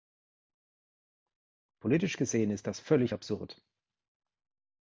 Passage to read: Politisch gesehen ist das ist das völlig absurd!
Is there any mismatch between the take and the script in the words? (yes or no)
yes